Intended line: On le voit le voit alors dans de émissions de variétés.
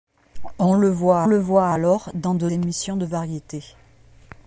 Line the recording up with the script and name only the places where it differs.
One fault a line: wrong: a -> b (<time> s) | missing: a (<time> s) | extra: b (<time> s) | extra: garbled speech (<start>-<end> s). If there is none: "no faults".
no faults